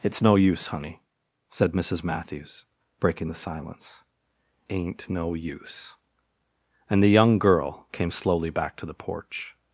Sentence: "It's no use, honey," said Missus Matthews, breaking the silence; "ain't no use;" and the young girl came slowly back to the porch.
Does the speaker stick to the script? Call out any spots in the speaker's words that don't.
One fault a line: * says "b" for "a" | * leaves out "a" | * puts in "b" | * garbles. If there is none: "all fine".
all fine